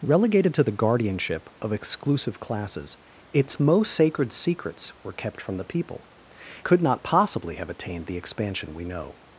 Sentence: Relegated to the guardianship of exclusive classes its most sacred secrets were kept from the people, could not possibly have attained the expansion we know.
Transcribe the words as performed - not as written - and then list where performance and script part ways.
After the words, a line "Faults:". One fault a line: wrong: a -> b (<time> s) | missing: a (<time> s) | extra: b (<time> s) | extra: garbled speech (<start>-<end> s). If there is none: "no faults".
Relegated to the guardianship of exclusive classes its most sacred secrets were kept from the people, could not possibly have attained the expansion we know.
Faults:
no faults